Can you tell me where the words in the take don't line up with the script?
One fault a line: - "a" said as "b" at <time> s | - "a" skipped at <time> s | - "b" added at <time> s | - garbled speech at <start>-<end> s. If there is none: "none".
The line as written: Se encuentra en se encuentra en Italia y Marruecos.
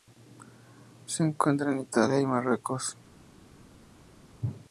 - "se encuentra en" skipped at 1.8 s